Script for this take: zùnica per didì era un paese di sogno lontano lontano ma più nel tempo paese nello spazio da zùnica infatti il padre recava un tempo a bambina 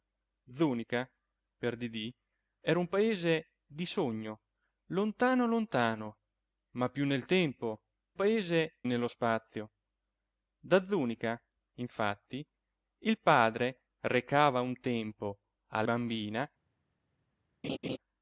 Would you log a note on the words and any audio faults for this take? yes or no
yes